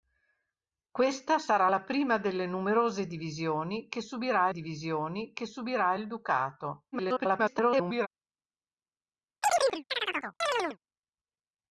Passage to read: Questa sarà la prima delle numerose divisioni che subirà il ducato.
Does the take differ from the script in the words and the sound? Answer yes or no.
yes